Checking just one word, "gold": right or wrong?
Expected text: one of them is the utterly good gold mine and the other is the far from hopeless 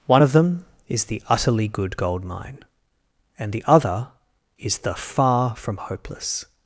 right